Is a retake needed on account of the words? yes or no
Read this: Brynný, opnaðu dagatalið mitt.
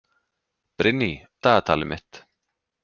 yes